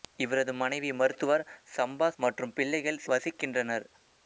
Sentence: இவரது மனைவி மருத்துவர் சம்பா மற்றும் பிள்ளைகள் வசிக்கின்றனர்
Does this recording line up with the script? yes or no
yes